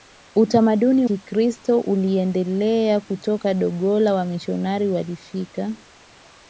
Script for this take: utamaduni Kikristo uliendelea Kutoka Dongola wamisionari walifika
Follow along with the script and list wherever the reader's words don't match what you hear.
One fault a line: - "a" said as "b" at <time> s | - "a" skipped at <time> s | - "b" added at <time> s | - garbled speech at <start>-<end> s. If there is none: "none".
none